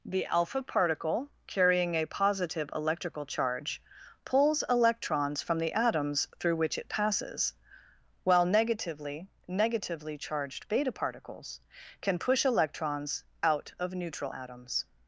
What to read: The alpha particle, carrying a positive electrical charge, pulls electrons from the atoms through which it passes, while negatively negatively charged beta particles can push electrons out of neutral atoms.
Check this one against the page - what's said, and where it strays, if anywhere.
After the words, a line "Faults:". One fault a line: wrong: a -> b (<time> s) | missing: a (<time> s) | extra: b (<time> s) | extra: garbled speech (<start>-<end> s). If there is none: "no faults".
The alpha particle, carrying a positive electrical charge, pulls electrons from the atoms through which it passes, while negatively negatively charged beta particles can push electrons out of neutral atoms.
Faults:
no faults